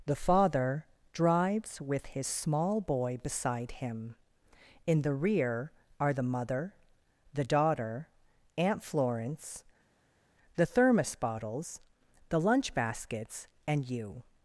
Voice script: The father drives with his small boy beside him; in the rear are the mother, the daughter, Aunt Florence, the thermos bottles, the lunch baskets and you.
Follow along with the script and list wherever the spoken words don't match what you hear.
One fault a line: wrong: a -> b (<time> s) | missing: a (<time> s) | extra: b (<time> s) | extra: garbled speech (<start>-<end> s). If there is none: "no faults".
no faults